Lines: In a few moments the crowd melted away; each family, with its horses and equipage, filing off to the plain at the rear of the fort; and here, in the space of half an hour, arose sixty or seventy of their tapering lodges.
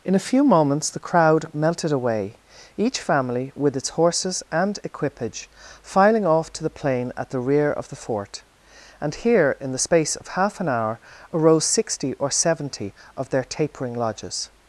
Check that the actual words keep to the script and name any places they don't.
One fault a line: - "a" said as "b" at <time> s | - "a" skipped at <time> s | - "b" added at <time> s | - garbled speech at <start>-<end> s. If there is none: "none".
none